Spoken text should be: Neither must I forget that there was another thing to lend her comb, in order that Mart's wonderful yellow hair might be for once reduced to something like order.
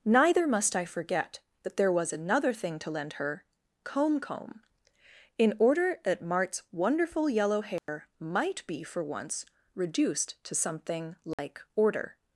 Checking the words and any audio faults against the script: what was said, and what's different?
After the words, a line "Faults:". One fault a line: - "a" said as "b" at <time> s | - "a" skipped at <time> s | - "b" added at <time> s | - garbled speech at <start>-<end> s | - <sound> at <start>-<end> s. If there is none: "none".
Neither must I forget that there was another thing to lend her comb comb, in order that Mart's wonderful yellow hair might be for once reduced to something like order.
Faults:
- "comb" added at 4.2 s
- dropout at 7.8-7.9 s
- dropout at 11.3-11.4 s